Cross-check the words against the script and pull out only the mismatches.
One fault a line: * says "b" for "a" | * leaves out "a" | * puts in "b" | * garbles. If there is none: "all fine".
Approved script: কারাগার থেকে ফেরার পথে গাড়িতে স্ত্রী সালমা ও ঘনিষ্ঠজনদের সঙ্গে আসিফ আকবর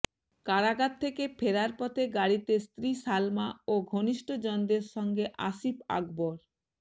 all fine